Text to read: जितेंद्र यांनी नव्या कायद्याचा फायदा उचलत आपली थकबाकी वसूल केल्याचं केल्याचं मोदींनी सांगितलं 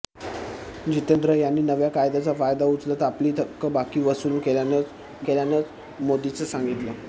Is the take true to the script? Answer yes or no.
yes